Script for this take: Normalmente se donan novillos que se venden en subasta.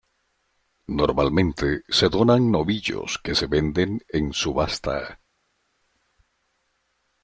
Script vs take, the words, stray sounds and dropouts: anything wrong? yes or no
no